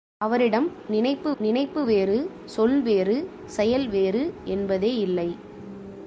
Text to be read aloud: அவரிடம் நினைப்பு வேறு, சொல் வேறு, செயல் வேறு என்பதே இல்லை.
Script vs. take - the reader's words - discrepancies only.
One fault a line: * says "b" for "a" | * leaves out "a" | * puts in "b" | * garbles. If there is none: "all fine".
* puts in "நினைப்பு"